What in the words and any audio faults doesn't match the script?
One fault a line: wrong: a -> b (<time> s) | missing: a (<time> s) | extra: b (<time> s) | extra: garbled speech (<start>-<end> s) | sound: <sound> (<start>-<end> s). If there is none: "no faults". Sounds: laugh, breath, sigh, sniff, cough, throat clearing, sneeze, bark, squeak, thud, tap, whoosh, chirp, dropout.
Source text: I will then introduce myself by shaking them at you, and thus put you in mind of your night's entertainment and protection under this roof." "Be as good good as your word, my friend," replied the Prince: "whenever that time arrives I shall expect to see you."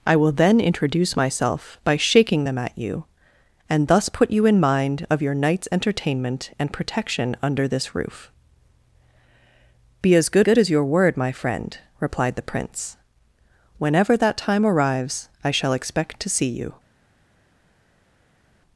no faults